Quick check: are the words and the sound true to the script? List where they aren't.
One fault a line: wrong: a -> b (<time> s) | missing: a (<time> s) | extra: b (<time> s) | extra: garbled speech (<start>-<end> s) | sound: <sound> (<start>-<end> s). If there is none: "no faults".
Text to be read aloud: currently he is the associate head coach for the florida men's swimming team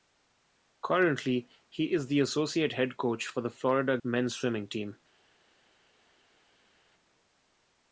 no faults